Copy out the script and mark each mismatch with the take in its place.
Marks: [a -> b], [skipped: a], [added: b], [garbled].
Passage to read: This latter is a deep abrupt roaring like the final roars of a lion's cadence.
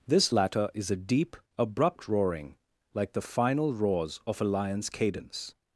This latter is a deep abrupt roaring like the final roars of a lion's cadence.